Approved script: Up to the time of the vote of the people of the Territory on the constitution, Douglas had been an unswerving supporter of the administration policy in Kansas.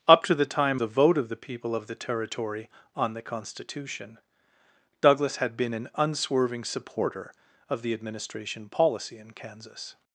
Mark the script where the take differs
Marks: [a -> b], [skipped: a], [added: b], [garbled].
Up to the time [skipped: of] the vote of the people of the Territory on the constitution, Douglas had been an unswerving supporter of the administration policy in Kansas.